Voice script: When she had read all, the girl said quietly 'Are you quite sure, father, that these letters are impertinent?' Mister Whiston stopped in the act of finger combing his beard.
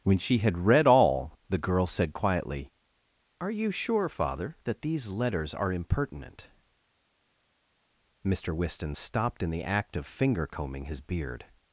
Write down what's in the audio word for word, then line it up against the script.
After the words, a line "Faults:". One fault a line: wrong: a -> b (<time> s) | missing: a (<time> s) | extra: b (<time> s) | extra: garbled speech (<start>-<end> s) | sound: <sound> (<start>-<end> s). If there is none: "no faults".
When she had read all, the girl said quietly 'Are you sure, father, that these letters are impertinent?' Mister Whiston stopped in the act of finger combing his beard.
Faults:
missing: quite (3.7 s)